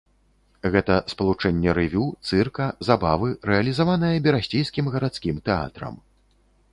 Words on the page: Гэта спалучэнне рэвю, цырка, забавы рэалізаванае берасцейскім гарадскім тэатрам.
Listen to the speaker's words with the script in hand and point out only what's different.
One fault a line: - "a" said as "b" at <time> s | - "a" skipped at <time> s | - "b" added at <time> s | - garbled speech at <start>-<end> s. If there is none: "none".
none